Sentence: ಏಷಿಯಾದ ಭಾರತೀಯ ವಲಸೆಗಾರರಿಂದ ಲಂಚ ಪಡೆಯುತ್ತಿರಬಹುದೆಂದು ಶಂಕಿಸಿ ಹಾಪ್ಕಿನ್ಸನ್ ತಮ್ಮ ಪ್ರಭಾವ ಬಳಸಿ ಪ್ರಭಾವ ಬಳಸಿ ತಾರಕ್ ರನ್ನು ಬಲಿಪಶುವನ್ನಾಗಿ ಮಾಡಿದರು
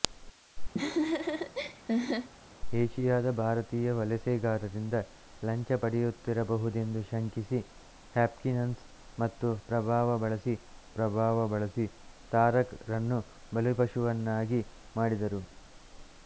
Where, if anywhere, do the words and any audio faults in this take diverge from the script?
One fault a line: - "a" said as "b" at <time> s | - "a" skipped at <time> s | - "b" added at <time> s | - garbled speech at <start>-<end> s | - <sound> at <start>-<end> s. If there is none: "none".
- laugh at 0.7-2.3 s